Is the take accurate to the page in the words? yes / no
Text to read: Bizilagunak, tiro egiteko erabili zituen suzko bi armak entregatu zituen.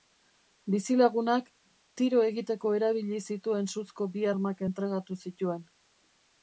yes